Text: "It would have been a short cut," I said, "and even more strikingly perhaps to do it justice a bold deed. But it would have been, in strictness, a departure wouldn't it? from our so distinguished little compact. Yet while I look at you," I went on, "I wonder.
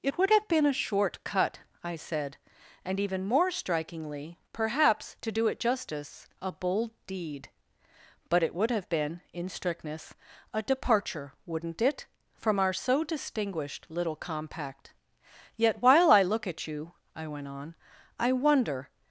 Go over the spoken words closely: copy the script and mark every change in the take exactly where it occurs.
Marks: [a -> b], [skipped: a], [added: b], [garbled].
"It would have been a short cut," I said, "and even more strikingly perhaps to do it justice a bold deed. But it would have been, in strictness, a departure wouldn't it? from our so distinguished little compact. Yet while I look at you," I went on, "I wonder.